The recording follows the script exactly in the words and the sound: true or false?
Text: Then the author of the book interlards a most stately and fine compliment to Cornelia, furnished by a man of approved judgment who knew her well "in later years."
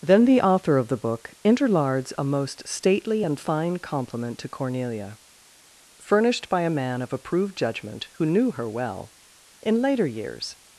true